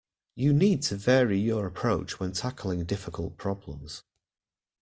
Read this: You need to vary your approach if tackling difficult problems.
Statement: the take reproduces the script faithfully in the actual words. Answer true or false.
false